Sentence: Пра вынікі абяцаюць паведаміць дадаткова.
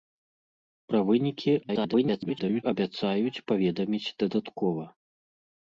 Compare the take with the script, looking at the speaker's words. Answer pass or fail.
fail